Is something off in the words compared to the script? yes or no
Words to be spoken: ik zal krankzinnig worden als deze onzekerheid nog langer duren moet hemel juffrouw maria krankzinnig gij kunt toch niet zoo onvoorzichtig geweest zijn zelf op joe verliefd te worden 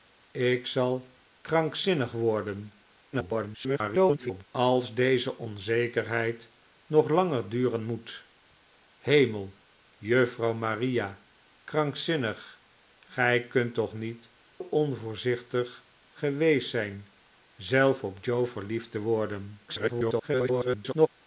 yes